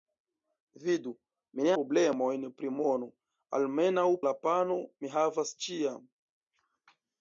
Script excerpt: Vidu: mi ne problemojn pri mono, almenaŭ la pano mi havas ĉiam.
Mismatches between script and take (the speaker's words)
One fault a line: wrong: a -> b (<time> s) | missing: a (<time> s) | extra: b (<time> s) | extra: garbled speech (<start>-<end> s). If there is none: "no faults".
no faults